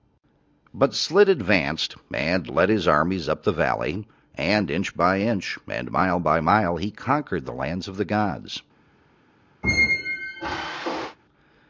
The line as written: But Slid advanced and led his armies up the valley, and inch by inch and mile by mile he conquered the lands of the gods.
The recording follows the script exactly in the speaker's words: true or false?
true